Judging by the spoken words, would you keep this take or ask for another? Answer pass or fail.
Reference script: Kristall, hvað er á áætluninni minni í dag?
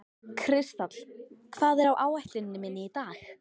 pass